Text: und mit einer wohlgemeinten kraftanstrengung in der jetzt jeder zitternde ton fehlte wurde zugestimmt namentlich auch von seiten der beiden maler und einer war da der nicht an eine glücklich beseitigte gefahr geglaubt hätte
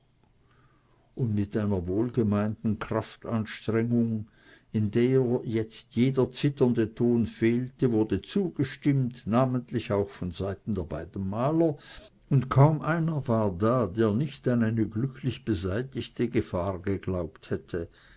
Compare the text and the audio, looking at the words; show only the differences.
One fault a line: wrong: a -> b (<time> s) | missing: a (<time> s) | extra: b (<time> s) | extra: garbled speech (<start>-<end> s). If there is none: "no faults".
extra: kaum (12.5 s)